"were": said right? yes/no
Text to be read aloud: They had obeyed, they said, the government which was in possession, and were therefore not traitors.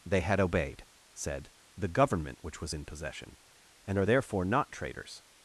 no